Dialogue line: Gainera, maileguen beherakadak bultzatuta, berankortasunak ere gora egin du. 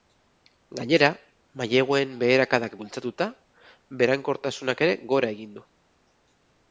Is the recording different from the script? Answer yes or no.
no